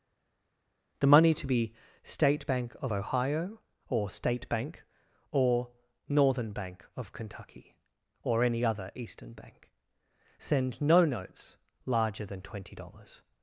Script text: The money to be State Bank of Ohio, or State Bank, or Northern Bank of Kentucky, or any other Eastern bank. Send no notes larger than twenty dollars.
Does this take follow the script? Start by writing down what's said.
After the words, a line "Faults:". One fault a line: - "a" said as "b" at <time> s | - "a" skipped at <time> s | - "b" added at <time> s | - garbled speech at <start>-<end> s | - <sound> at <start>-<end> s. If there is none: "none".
The money to be State Bank of Ohio, or State Bank, or Northern Bank of Kentucky, or any other Eastern bank. Send no notes larger than twenty dollars.
Faults:
none